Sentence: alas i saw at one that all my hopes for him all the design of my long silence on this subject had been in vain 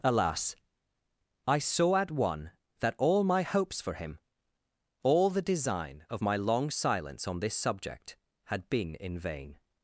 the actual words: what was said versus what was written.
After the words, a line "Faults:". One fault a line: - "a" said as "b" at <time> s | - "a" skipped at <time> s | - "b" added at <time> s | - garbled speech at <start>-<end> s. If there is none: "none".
alas i saw at one that all my hopes for him all the design of my long silence on this subject had been in vain
Faults:
none